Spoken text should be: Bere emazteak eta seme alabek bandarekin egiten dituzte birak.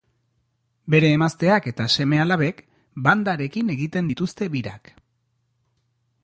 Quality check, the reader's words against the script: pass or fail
pass